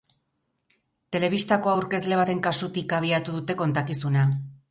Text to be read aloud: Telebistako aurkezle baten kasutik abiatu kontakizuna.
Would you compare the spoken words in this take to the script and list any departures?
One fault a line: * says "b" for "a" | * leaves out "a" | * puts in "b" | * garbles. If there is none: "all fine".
* puts in "dute"